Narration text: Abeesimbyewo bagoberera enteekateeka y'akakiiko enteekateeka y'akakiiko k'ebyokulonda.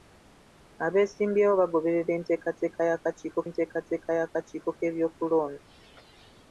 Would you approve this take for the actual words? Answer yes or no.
yes